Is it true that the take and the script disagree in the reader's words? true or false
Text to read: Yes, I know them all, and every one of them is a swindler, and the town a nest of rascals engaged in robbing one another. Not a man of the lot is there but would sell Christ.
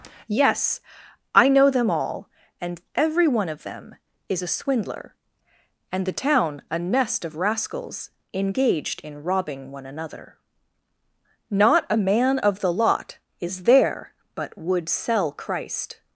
false